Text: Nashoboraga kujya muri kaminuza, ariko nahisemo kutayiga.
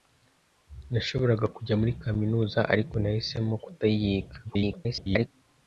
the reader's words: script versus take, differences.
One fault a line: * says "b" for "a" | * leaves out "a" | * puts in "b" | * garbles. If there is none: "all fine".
* garbles